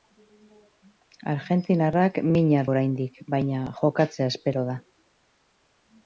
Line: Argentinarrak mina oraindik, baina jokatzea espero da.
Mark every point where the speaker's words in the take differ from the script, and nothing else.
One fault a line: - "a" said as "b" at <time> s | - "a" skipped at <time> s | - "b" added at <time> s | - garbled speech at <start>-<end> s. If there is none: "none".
none